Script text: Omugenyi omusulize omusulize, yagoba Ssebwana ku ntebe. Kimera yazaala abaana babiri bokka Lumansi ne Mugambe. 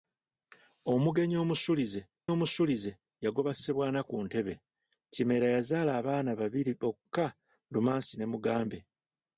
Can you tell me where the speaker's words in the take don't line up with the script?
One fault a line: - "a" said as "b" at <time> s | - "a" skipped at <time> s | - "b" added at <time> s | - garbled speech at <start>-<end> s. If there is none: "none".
none